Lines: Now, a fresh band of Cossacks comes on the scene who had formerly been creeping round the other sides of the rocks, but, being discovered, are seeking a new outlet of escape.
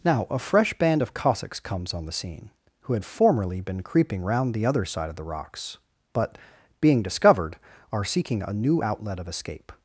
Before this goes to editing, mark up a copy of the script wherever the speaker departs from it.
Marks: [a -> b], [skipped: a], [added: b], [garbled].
Now, a fresh band of Cossacks comes on the scene who had formerly been creeping round the other [sides -> side] of the rocks, but, being discovered, are seeking a new outlet of escape.